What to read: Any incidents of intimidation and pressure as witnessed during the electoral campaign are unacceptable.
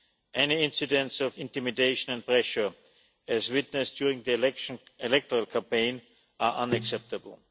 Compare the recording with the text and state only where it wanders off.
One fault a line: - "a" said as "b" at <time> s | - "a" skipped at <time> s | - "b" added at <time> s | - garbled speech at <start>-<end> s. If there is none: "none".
none